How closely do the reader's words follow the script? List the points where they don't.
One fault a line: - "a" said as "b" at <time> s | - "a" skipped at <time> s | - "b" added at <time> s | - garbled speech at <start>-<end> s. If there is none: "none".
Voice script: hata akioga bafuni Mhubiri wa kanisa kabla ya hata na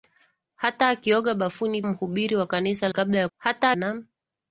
none